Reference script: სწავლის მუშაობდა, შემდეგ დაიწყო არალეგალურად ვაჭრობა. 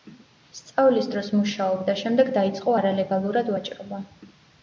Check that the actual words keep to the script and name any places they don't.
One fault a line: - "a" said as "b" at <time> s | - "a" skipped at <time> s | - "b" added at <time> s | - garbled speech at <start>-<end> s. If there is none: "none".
- "დროს" added at 1.1 s